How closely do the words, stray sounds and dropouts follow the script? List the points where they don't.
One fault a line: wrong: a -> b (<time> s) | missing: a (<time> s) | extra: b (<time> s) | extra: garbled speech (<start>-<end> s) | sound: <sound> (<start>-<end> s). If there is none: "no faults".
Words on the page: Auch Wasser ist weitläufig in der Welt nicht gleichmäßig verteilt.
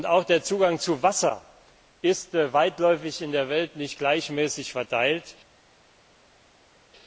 extra: der Zugang zu (0.2 s)